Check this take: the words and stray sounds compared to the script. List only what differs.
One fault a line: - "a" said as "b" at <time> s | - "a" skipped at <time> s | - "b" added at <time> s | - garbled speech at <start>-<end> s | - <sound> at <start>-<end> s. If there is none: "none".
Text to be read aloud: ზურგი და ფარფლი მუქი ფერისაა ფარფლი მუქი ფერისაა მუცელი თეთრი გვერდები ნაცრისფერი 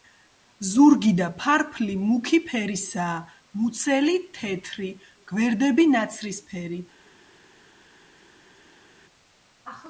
- "ფარფლი მუქი ფერისაა" skipped at 3.2 s